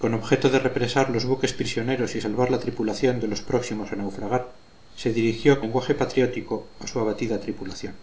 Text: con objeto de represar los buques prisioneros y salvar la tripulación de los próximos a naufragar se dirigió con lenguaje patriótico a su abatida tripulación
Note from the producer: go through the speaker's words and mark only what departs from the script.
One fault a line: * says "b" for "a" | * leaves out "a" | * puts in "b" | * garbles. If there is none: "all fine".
* leaves out "con"